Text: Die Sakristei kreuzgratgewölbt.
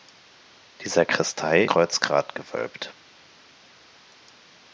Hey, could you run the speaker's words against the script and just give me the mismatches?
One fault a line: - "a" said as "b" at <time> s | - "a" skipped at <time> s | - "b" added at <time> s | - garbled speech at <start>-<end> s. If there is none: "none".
none